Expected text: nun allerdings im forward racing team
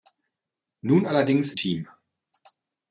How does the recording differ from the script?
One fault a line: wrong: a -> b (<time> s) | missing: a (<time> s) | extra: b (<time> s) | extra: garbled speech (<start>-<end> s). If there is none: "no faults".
missing: im forward racing (1.5 s)